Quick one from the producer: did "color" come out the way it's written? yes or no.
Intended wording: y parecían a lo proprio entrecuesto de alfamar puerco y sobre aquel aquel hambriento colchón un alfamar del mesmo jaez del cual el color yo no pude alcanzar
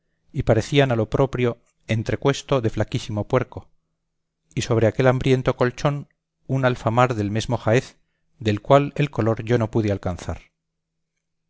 yes